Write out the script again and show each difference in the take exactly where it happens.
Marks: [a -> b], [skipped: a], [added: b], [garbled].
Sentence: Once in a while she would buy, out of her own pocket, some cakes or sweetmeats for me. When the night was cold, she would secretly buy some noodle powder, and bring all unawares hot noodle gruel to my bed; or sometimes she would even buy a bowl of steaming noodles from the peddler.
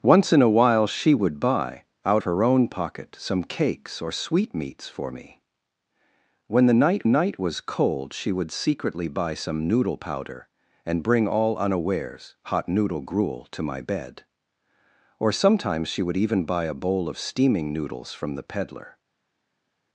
Once in a while she would buy, out [skipped: of] her own pocket, some cakes or sweetmeats for me. When the night [added: night] was cold, she would secretly buy some noodle powder, and bring all unawares hot noodle gruel to my bed; or sometimes she would even buy a bowl of steaming noodles from the peddler.